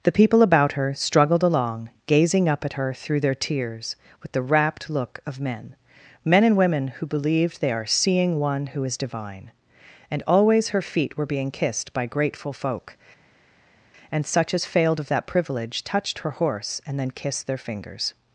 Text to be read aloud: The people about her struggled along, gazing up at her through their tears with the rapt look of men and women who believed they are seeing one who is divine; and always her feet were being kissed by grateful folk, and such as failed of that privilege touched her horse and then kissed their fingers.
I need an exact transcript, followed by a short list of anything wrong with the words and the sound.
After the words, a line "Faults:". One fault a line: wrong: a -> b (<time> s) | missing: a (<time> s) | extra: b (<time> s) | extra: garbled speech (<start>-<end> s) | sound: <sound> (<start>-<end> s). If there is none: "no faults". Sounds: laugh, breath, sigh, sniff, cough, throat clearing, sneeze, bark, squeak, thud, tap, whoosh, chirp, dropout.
The people about her struggled along, gazing up at her through their tears with the rapt look of men men and women who believed they are seeing one who is divine; and always her feet were being kissed by grateful folk, and such as failed of that privilege touched her horse and then kissed their fingers.
Faults:
extra: men (6.2 s)